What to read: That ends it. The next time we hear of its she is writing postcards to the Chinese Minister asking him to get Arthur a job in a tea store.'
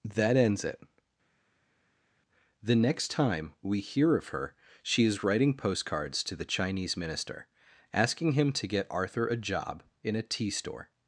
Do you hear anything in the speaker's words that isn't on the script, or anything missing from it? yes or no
yes